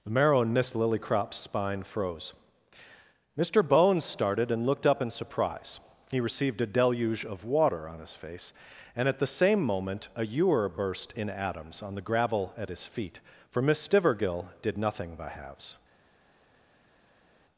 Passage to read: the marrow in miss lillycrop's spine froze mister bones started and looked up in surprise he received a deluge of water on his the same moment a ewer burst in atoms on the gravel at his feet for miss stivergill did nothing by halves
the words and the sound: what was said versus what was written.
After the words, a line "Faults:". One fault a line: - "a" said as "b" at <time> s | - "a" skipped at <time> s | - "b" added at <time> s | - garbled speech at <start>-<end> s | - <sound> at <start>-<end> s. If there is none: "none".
the marrow in miss lillycrop's spine froze mister bones started and looked up in surprise he received a deluge of water on his face and at the same moment a ewer burst in atoms on the gravel at his feet for miss stivergill did nothing by halves
Faults:
- "face and at" added at 8.1 s